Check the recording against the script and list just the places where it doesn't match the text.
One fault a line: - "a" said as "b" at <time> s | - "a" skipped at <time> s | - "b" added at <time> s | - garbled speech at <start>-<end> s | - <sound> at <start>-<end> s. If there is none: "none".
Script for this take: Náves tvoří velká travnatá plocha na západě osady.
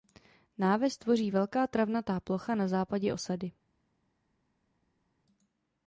none